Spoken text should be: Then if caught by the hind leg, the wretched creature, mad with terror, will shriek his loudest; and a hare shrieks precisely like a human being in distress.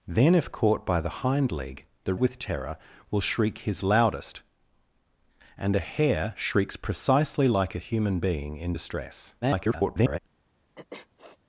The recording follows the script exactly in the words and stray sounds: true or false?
false